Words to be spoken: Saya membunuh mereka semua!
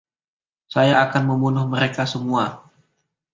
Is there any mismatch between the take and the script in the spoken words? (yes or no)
yes